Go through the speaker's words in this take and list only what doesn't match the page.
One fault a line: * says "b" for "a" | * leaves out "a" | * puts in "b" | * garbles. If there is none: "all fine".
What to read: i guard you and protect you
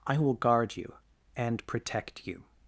* puts in "will"